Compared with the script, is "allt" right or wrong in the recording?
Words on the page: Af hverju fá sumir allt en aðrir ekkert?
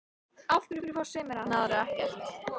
wrong